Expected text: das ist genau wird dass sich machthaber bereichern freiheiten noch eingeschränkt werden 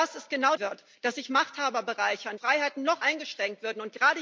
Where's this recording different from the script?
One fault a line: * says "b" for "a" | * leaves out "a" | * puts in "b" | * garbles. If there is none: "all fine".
all fine